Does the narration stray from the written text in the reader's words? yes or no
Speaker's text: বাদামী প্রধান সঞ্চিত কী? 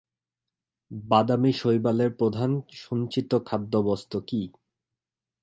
yes